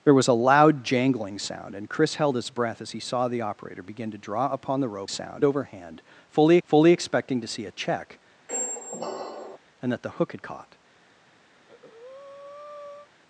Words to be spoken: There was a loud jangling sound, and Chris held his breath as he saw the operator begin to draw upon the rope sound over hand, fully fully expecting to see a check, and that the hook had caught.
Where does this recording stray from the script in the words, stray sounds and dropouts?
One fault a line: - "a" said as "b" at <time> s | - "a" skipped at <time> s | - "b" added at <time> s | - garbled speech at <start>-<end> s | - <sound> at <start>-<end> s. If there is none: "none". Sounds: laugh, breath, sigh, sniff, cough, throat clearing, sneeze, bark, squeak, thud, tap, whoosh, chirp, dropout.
- squeak at 8.5-9.6 s
- breath at 11.5-13.1 s